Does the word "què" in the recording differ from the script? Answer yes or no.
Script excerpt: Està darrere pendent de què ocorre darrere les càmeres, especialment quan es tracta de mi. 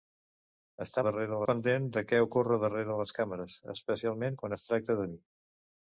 no